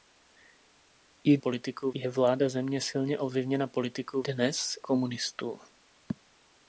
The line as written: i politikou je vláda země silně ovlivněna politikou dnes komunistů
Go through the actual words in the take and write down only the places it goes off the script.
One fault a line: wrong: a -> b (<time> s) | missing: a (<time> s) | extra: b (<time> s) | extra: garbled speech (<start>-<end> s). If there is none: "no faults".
no faults